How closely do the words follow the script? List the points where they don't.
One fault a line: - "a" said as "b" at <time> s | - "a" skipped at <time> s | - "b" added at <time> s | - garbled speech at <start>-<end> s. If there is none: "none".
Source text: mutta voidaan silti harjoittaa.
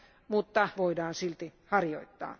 none